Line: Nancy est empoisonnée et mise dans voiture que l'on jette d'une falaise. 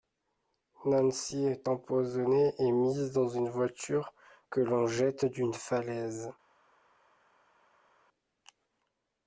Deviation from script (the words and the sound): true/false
true